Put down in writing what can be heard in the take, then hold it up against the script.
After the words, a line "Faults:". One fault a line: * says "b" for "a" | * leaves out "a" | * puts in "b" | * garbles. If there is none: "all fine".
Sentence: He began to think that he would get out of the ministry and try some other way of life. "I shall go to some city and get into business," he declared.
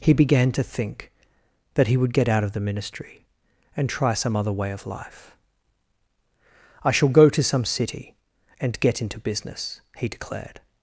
He began to think that he would get out of the ministry and try some other way of life. "I shall go to some city and get into business," he declared.
Faults:
all fine